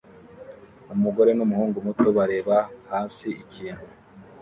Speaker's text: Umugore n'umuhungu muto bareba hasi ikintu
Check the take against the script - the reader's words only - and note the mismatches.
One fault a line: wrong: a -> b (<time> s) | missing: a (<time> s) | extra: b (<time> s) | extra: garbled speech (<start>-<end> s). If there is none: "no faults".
no faults